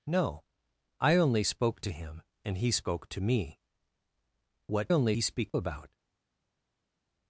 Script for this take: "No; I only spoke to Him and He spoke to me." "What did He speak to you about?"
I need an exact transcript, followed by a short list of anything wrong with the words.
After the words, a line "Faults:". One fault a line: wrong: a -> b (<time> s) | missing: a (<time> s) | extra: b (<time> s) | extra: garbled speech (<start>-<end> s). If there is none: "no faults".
"No; I only spoke to Him and He spoke to me." "What only He speak about?"
Faults:
wrong: did -> only (4.9 s)
missing: to you (5.5 s)